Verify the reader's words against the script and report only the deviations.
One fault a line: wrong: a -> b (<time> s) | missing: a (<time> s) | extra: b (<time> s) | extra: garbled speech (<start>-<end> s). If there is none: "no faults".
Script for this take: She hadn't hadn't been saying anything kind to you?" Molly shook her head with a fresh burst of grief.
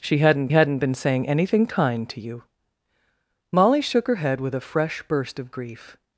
no faults